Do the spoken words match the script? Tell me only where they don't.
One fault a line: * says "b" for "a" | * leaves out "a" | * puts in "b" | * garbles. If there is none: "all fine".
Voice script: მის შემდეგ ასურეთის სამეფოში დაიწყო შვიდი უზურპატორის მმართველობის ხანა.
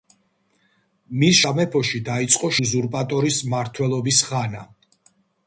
* leaves out "შემდეგ ასურეთის"
* leaves out "შვიდი"